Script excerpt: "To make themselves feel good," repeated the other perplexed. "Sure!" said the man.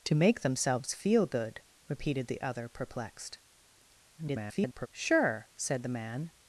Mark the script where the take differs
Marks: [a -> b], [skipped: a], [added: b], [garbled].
"To make themselves feel good," repeated the other perplexed. [garbled] "Sure!" said the man.